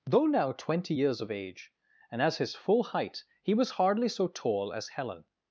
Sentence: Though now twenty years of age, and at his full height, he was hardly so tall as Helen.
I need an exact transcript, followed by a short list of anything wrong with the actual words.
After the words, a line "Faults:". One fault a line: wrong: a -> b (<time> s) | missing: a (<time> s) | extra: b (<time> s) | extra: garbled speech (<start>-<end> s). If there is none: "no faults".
Though now twenty years of age, and as his full height, he was hardly so tall as Helen.
Faults:
wrong: at -> as (2.2 s)